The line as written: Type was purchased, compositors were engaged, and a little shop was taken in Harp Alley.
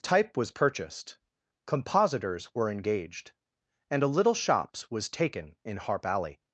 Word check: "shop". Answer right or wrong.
wrong